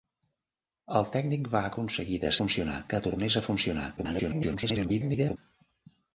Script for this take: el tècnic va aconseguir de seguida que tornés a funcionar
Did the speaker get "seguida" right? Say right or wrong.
wrong